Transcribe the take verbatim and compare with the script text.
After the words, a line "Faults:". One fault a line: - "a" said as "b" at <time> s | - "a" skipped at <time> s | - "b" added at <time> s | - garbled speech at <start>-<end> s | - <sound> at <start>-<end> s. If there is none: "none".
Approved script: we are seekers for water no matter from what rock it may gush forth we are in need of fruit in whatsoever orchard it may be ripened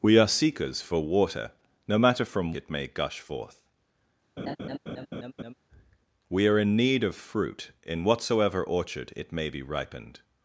we are seekers for water no matter from it may gush forth we are in need of fruit in whatsoever orchard it may be ripened
Faults:
- "what rock" skipped at 2.5 s
- laugh at 4.4-5.5 s